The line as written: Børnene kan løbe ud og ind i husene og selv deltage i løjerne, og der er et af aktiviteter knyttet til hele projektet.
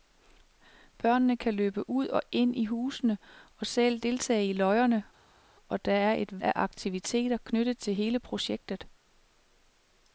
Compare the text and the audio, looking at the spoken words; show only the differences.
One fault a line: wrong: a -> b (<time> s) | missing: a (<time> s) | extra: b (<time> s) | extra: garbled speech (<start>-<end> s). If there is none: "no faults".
no faults